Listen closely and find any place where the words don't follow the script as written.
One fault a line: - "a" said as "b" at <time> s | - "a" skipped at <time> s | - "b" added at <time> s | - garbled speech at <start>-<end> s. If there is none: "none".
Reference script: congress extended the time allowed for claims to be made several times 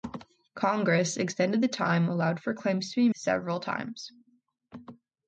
- "made" skipped at 3.1 s